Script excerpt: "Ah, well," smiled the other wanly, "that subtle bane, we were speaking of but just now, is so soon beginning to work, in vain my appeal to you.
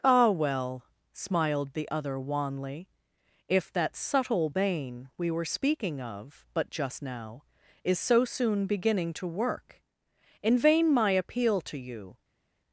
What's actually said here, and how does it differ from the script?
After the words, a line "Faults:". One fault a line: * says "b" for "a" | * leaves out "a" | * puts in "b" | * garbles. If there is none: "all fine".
"Ah, well," smiled the other wanly, "if that subtle bane, we were speaking of but just now, is so soon beginning to work, in vain my appeal to you.
Faults:
* puts in "if"